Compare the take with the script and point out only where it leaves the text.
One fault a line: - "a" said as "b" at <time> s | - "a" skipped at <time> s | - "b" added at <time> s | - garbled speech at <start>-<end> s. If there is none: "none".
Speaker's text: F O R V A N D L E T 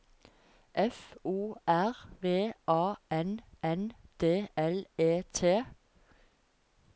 - "N" added at 3.6 s